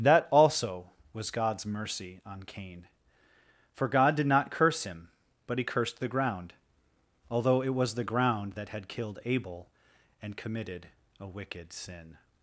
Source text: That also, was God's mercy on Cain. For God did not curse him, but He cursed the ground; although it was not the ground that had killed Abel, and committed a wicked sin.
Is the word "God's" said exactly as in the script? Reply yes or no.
yes